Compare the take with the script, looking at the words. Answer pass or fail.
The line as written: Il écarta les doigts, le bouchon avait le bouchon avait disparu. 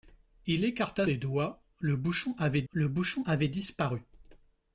pass